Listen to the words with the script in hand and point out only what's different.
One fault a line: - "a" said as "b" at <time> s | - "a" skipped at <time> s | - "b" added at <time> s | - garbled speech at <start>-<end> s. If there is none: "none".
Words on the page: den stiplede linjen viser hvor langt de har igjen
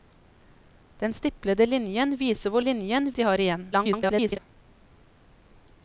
- "langt" said as "linjen" at 2.6 s
- garbled speech at 3.7-4.4 s